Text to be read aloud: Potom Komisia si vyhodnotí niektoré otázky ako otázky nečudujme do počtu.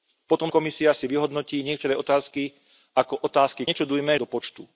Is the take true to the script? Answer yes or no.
yes